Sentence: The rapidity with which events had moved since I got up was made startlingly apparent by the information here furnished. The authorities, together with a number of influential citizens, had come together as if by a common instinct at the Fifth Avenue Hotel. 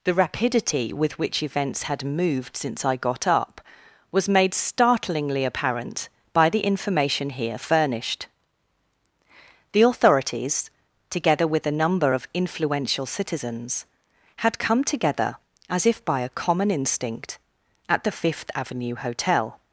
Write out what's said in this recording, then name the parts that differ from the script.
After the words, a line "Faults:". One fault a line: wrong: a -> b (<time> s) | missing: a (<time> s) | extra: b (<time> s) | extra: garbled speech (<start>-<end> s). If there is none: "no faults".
The rapidity with which events had moved since I got up was made startlingly apparent by the information here furnished. The authorities, together with a number of influential citizens, had come together as if by a common instinct at the Fifth Avenue Hotel.
Faults:
no faults